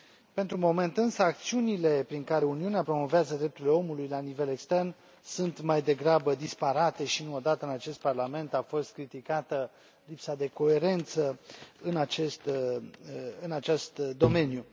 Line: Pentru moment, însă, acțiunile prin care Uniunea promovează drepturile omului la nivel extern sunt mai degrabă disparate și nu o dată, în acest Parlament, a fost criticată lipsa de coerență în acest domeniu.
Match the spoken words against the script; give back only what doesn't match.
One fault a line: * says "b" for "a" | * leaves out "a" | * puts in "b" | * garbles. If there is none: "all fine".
all fine